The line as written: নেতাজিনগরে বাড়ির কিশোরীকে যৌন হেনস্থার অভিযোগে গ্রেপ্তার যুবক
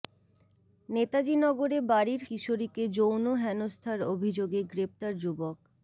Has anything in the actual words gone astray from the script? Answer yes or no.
no